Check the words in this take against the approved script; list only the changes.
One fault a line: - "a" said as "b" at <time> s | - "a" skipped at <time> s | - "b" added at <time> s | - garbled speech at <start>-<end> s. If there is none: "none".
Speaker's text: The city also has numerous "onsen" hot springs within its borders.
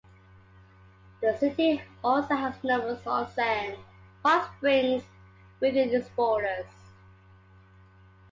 none